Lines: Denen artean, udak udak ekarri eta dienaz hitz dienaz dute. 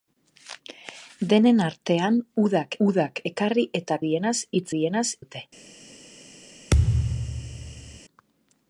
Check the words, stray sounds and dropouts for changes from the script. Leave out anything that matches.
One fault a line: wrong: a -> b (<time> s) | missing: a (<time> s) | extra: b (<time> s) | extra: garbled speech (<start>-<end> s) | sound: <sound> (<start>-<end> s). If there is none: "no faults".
sound: thud (6.7-8.0 s)